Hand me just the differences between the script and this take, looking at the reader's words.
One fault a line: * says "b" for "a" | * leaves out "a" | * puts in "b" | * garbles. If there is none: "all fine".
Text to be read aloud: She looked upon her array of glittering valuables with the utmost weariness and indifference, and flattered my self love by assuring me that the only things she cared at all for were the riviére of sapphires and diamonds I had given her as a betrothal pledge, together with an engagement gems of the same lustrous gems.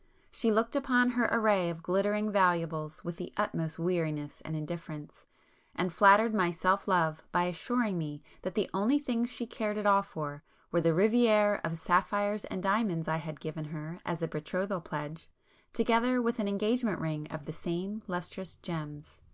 * says "ring" for "gems"